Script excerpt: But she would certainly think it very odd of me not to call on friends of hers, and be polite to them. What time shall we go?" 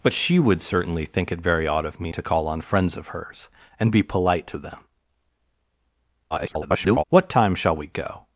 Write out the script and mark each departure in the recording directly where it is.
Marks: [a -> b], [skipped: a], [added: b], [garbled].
But she would certainly think it very odd of me [skipped: not] to call on friends of hers, and be polite to them. [garbled] What time shall we go?"